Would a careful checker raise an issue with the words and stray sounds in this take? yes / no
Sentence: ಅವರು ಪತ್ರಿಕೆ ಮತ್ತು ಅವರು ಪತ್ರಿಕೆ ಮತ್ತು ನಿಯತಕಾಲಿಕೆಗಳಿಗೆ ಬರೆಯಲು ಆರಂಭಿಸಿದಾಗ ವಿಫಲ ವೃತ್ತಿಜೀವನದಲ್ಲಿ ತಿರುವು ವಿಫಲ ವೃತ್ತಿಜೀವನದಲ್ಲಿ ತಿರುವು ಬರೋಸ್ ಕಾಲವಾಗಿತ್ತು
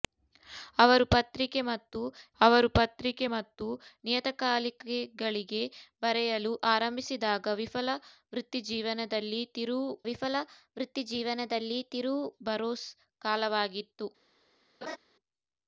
yes